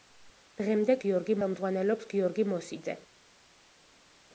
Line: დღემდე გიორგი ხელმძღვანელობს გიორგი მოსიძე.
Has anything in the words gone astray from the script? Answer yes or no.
no